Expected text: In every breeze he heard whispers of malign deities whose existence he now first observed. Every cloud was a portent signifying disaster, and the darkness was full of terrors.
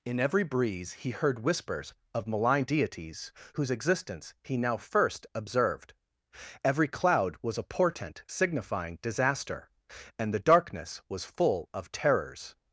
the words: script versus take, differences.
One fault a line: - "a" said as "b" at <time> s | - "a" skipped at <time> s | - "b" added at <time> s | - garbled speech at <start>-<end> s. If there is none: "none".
none